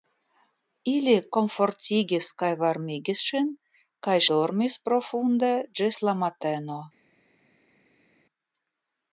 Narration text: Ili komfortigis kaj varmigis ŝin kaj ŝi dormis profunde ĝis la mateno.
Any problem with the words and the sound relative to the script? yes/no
yes